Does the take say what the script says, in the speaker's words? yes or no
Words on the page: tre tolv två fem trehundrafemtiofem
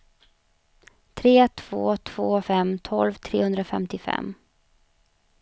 no